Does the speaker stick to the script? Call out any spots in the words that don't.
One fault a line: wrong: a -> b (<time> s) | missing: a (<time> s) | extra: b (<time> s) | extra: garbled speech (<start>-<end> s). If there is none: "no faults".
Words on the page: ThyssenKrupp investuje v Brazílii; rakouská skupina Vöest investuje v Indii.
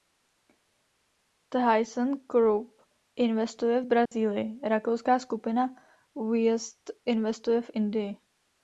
no faults